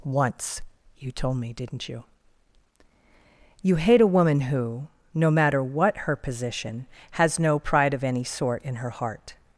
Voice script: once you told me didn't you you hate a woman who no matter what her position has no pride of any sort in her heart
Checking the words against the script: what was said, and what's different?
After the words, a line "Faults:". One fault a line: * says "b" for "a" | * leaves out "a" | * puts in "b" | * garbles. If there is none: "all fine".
once you told me didn't you you hate a woman who no matter what her position has no pride of any sort in her heart
Faults:
all fine